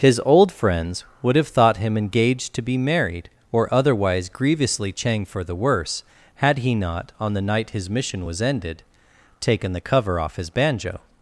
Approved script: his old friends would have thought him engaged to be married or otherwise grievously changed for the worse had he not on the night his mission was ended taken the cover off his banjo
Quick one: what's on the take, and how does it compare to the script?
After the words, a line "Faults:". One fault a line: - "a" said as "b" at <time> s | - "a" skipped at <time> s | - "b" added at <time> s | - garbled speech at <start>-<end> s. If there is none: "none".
his old friends would have thought him engaged to be married or otherwise grievously chang for the worse had he not on the night his mission was ended taken the cover off his banjo
Faults:
- "changed" said as "chang" at 4.9 s